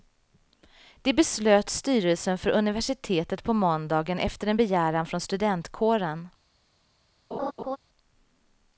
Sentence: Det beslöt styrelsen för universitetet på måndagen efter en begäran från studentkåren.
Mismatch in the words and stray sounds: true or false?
true